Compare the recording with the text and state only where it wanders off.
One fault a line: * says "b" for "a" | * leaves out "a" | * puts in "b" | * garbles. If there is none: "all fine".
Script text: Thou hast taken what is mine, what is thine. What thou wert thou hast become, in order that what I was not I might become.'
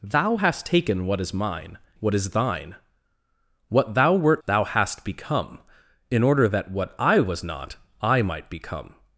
all fine